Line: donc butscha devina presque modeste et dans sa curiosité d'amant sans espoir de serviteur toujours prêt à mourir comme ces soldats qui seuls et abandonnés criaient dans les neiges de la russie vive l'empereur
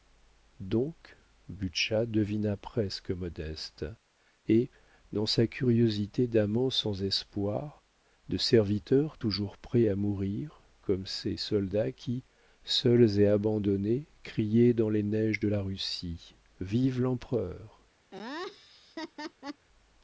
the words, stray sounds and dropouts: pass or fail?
fail